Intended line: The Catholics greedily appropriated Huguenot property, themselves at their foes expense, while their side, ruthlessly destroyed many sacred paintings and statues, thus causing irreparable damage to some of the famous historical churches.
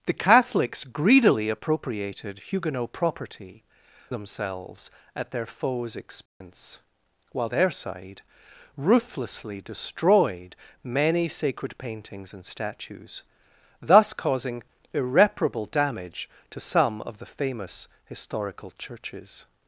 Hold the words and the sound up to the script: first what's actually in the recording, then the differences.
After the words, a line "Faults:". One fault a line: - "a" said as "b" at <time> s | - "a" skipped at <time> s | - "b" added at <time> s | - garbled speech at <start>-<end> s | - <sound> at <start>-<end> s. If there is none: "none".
The Catholics greedily appropriated Huguenot property, themselves at their foes expense, while their side, ruthlessly destroyed many sacred paintings and statues, thus causing irreparable damage to some of the famous historical churches.
Faults:
- dropout at 6.3-6.4 s